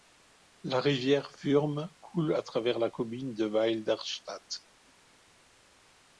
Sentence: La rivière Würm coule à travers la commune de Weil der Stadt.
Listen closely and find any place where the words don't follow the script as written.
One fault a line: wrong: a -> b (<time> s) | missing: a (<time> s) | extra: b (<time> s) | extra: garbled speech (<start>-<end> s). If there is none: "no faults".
no faults